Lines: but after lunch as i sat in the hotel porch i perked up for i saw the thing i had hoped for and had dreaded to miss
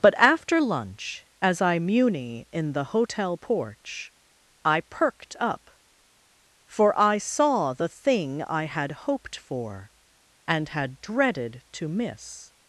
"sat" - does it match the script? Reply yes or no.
no